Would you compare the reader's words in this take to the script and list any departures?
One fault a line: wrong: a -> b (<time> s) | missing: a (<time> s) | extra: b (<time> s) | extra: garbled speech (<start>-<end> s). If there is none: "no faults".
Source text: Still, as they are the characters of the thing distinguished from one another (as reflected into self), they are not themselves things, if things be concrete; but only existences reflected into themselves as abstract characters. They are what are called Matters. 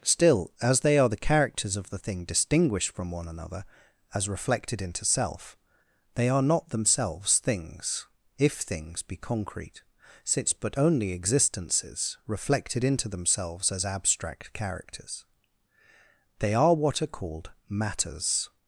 extra: since (10.2 s)